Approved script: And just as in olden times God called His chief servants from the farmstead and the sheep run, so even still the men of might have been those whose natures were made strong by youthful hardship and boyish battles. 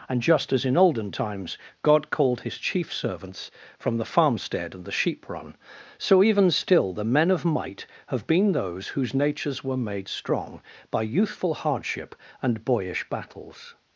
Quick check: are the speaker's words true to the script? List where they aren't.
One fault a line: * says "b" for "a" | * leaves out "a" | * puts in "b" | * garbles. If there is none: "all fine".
all fine